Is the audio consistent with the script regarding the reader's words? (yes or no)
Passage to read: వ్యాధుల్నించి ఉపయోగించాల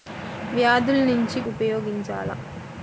yes